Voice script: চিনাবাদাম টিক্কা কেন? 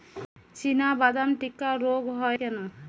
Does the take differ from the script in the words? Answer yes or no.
yes